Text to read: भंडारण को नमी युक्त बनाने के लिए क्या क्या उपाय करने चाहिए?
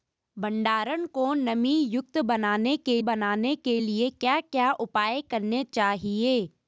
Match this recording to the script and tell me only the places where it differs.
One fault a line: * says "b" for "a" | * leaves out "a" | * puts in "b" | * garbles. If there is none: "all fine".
* puts in "बनाने के"